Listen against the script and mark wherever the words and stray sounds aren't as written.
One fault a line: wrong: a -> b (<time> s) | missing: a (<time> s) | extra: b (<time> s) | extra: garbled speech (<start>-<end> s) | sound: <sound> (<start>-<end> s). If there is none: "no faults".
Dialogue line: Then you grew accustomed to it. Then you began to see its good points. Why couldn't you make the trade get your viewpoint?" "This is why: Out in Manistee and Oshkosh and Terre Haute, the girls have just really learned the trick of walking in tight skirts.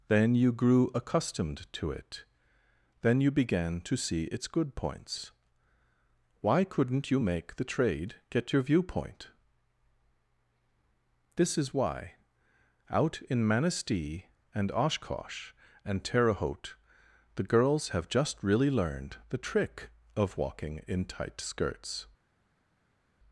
no faults